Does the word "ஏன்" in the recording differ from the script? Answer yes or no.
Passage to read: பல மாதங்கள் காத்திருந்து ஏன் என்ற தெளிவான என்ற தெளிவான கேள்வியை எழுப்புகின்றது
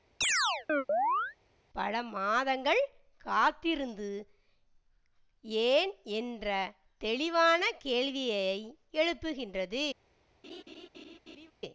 no